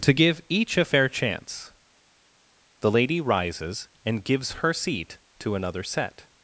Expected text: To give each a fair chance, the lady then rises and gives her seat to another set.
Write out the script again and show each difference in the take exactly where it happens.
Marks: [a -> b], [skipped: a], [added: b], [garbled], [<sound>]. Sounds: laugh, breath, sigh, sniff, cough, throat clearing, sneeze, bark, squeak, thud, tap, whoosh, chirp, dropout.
To give each a fair chance, the lady [skipped: then] rises and gives her seat to another set.